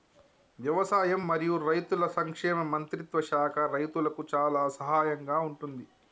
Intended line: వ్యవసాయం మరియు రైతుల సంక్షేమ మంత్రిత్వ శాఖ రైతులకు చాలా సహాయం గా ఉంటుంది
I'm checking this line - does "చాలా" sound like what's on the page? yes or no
yes